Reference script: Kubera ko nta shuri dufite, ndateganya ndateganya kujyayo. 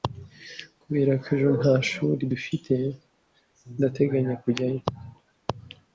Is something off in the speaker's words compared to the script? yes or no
yes